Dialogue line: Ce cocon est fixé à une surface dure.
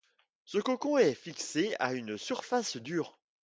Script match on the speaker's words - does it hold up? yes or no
yes